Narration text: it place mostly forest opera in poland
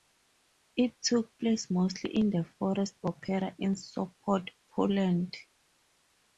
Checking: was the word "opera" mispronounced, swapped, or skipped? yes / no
no